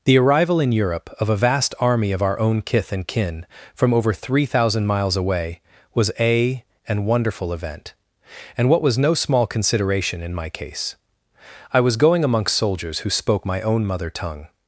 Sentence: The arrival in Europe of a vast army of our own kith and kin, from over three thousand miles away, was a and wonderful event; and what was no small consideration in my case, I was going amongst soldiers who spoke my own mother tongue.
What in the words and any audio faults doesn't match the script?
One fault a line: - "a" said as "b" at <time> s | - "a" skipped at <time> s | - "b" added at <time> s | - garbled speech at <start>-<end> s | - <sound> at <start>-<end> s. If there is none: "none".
none